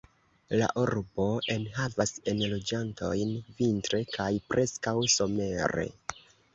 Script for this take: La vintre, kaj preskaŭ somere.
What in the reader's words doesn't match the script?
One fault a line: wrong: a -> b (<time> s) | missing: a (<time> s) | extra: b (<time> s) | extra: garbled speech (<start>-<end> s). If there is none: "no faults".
extra: urbo enhavas enloĝantojn (0.8 s)